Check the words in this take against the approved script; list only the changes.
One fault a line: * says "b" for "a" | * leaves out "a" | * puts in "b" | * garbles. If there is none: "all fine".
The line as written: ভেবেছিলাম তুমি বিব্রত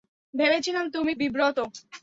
all fine